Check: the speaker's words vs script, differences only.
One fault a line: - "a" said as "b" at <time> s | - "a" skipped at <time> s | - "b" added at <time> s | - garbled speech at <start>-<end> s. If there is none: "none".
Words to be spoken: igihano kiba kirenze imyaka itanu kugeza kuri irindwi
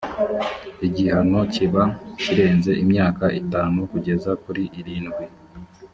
none